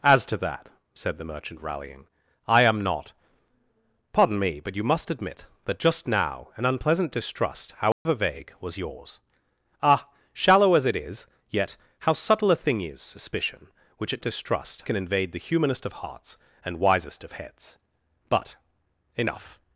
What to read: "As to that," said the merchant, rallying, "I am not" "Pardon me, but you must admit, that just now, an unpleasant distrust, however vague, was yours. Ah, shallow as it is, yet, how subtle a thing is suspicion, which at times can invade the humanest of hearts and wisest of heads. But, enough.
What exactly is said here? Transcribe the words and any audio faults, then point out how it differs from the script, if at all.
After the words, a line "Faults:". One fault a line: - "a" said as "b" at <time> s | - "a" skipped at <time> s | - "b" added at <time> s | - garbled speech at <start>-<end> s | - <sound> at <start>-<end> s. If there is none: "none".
"As to that," said the merchant, rallying, "I am not" "Pardon me, but you must admit, that just now, an unpleasant distrust, however vague, was yours. Ah, shallow as it is, yet, how subtle a thing is suspicion, which at distrust can invade the humanest of hearts and wisest of heads. But, enough.
Faults:
- dropout at 7.9-8.1 s
- "times" said as "distrust" at 14.2 s